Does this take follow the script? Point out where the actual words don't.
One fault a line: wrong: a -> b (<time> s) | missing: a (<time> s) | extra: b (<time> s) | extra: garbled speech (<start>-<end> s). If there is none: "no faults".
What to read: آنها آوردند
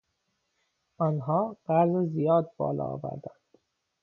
extra: قرض زیاد بالا (1.6 s)